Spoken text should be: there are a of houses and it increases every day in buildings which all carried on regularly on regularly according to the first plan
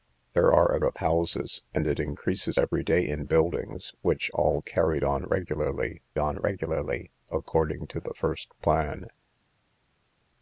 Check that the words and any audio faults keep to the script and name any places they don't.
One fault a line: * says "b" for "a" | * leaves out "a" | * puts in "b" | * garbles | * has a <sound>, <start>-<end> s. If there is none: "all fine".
all fine